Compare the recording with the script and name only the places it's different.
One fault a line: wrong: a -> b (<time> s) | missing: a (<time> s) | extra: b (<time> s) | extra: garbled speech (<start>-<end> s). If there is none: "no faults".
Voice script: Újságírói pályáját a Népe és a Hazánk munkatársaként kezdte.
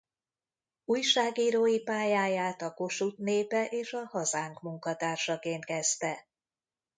extra: Kossuth (2.7 s)